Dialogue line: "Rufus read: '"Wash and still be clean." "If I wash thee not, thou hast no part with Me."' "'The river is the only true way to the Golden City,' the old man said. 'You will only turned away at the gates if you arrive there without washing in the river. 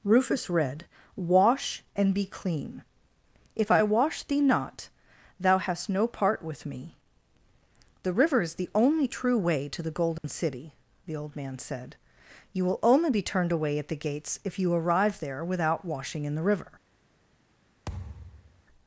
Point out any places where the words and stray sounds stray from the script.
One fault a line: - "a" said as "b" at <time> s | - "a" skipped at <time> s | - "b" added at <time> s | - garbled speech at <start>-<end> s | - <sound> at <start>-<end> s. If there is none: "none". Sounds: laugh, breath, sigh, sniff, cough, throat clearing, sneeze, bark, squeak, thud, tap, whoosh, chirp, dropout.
- "still" skipped at 2.1 s
- dropout at 10.2-10.2 s
- "be" added at 13.1 s
- thud at 17.9-18.6 s